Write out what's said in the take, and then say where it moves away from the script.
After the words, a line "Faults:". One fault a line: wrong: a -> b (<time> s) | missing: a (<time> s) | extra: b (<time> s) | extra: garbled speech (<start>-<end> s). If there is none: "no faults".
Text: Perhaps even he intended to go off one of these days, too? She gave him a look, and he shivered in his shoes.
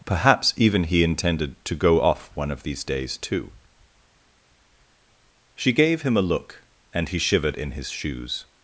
Perhaps even he intended to go off one of these days, too? She gave him a look, and he shivered in his shoes.
Faults:
no faults